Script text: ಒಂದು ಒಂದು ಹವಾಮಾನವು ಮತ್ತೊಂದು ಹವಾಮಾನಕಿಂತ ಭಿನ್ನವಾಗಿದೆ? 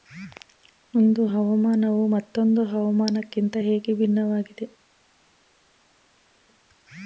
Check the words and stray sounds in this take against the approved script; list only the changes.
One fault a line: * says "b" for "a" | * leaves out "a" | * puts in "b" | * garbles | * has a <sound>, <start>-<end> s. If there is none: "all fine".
* leaves out "ಒಂದು"
* puts in "ಹೇಗೆ"